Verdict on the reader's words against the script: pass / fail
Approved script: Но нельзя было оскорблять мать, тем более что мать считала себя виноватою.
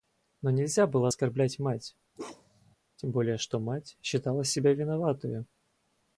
pass